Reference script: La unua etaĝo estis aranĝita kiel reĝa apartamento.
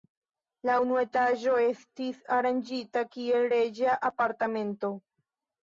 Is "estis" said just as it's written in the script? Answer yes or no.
yes